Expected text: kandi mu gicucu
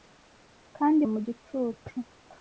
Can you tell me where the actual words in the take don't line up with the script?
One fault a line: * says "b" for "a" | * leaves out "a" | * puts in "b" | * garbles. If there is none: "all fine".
all fine